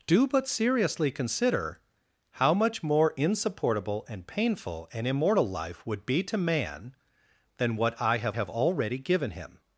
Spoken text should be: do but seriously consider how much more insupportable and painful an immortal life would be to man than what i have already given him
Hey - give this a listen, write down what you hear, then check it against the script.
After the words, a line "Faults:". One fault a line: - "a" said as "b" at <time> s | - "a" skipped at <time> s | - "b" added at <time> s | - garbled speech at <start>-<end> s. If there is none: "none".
do but seriously consider how much more insupportable and painful an immortal life would be to man than what i have have already given him
Faults:
- "have" added at 8.3 s